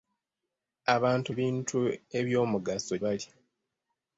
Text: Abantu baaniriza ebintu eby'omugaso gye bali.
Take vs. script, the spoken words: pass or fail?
fail